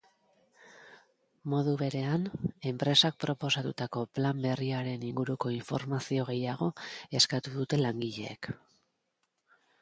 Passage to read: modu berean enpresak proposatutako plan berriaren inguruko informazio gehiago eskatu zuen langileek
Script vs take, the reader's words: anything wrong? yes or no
yes